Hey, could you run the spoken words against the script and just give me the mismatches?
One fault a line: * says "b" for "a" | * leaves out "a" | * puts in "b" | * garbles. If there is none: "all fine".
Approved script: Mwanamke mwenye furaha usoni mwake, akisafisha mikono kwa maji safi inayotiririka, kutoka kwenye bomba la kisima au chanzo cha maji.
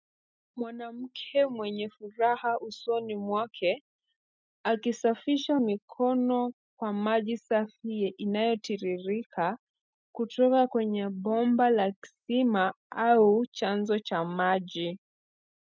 all fine